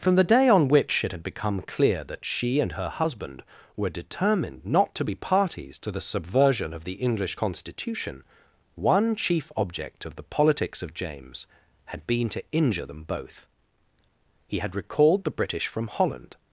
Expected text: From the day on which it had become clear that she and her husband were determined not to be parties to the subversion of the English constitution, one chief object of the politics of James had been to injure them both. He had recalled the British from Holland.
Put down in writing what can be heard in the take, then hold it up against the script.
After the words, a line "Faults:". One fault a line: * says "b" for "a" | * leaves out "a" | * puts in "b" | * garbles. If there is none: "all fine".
From the day on which it had become clear that she and her husband were determined not to be parties to the subversion of the English constitution, one chief object of the politics of James had been to injure them both. He had recalled the British from Holland.
Faults:
all fine